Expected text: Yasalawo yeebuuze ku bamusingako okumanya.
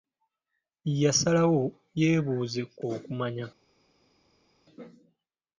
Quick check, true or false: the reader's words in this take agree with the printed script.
false